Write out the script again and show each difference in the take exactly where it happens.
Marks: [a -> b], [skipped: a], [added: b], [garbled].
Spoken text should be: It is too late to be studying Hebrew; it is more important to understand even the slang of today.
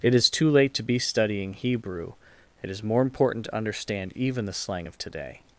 It is too late to be studying Hebrew; it is more important to understand even the slang of today.